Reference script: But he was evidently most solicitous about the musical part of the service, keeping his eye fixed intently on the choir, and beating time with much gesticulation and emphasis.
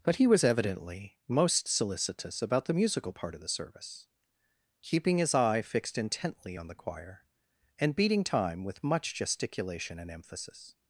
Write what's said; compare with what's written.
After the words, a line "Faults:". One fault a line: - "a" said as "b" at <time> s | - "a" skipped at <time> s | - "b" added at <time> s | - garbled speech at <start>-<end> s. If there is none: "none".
But he was evidently most solicitous about the musical part of the service, keeping his eye fixed intently on the choir, and beating time with much gesticulation and emphasis.
Faults:
none